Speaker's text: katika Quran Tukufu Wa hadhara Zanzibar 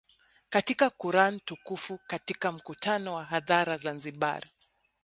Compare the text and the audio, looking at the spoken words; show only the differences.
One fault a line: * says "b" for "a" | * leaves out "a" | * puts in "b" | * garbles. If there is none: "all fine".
* puts in "Katika mkutano"